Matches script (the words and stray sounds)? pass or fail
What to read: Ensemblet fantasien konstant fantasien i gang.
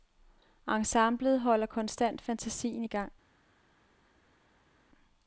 fail